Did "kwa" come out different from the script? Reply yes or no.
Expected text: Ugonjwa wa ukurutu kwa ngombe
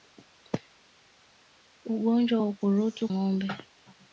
yes